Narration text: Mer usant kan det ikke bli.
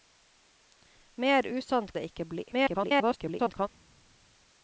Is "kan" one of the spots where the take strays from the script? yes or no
yes